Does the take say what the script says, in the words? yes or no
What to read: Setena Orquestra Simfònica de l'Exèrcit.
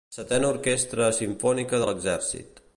yes